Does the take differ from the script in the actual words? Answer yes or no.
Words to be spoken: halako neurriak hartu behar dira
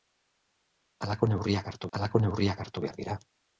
yes